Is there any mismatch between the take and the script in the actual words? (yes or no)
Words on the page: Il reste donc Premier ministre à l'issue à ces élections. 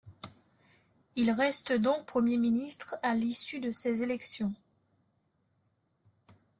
yes